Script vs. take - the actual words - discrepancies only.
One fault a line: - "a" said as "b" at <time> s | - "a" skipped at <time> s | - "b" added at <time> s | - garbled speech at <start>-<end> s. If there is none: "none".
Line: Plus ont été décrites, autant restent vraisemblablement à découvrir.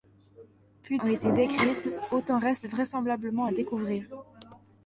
none